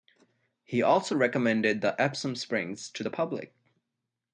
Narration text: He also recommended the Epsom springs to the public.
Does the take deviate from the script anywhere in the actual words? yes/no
no